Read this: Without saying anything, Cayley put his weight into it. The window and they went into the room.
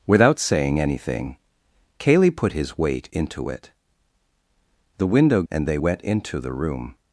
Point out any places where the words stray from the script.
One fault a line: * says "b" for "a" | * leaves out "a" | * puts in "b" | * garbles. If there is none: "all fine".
all fine